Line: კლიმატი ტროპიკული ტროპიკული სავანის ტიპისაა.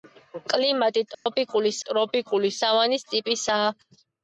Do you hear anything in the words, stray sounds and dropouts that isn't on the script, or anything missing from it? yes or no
yes